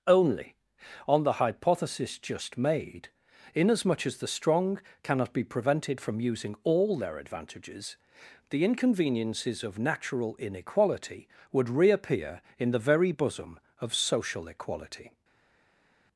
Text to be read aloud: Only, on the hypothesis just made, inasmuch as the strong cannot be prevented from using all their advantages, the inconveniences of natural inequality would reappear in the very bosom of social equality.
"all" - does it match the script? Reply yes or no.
yes